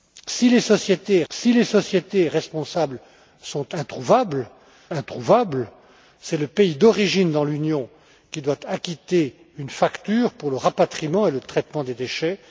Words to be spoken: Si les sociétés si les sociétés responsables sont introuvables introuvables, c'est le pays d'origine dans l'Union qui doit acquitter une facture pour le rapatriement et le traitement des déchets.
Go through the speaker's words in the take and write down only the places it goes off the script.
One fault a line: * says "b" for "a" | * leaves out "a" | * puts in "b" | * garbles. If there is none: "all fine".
all fine